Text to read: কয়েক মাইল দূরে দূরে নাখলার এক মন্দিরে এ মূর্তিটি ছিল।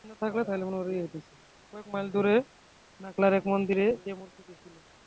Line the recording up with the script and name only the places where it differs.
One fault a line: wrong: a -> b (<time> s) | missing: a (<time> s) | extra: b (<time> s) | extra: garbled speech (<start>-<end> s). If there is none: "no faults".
missing: দূরে (2.4 s)